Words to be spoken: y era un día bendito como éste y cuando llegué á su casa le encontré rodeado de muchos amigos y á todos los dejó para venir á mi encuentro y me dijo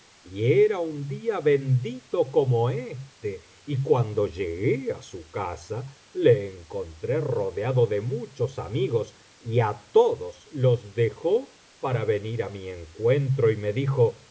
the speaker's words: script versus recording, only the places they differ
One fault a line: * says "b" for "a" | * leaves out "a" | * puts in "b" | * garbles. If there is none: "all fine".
all fine